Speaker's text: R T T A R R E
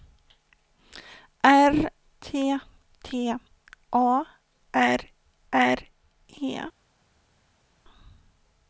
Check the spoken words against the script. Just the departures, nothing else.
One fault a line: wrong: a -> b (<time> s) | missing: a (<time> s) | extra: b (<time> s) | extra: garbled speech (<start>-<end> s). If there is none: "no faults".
no faults